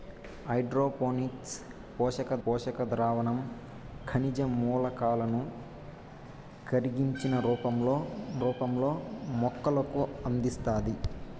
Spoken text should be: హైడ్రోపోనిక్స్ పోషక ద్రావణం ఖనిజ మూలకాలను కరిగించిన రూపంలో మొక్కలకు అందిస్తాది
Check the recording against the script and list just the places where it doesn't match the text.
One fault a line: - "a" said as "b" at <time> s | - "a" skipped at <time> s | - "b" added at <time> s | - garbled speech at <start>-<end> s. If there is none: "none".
- "పోషక" added at 2.4 s
- "రూపంలో" added at 8.4 s